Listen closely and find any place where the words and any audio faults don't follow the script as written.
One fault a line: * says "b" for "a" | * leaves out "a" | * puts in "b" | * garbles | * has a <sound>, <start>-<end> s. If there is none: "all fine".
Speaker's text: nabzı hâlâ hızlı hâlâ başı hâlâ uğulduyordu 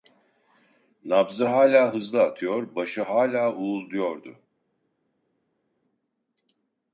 * says "atıyor" for "hâlâ"